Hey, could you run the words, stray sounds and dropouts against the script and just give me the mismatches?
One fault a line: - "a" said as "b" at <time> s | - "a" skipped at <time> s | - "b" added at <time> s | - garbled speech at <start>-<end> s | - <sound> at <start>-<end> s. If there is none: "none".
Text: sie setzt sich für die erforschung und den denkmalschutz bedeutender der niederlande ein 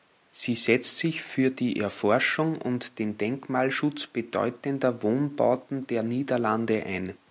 - "wohnbauten" added at 5.0 s